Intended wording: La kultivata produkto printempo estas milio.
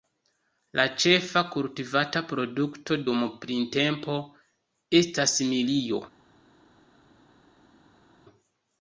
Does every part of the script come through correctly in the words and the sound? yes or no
no